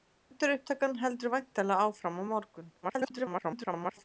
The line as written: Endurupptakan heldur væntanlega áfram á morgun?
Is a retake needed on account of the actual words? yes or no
yes